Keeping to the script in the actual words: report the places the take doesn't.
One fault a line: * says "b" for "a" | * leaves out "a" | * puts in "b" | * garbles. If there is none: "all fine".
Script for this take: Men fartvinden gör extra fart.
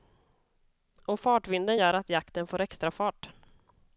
* says "Och" for "Men"
* puts in "att jakten får"